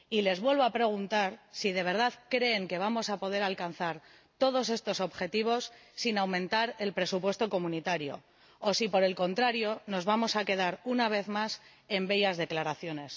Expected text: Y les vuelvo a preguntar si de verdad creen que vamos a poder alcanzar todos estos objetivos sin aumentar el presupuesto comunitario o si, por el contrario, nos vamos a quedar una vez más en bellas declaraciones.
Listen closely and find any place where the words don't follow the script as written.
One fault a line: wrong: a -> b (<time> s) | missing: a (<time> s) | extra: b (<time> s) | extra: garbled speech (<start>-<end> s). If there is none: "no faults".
no faults